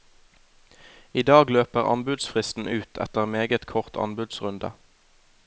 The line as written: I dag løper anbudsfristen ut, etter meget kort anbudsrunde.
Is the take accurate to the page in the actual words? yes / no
yes